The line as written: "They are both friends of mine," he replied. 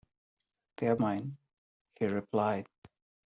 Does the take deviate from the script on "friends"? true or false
true